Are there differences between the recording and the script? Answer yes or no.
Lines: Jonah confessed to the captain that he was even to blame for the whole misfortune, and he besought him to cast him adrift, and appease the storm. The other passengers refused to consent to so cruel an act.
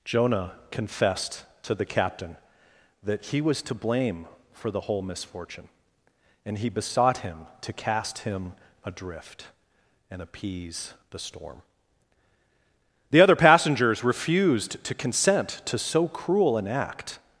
yes